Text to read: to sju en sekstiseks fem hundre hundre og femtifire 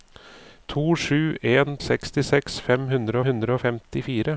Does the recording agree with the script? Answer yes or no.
yes